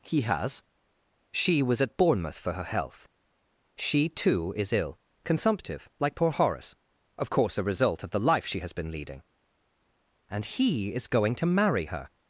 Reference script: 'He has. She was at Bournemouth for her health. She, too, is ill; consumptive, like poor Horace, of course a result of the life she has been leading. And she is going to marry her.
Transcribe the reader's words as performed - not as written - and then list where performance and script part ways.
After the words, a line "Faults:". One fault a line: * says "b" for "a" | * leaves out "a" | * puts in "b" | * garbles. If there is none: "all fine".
'He has. She was at Bournemouth for her health. She, too, is ill; consumptive, like poor Horace, of course a result of the life she has been leading. And he is going to marry her.
Faults:
* says "he" for "she"